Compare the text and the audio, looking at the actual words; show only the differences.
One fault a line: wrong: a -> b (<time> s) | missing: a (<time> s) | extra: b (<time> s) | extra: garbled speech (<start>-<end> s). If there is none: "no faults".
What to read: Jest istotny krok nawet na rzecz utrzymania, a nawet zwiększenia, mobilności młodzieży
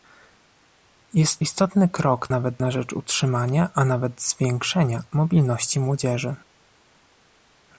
no faults